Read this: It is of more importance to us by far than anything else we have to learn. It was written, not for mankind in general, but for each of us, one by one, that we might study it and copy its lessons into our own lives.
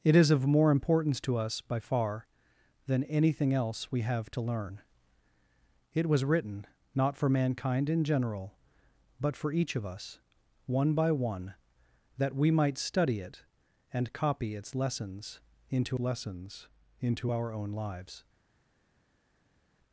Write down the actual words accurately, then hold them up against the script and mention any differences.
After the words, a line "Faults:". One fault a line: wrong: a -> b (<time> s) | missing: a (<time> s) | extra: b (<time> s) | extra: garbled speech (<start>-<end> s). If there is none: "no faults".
It is of more importance to us by far than anything else we have to learn. It was written, not for mankind in general, but for each of us, one by one, that we might study it and copy its lessons into lessons into our own lives.
Faults:
extra: lessons into (16.0 s)